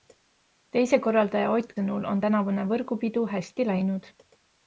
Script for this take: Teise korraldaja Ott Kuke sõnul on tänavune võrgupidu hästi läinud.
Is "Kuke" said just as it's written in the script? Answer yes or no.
no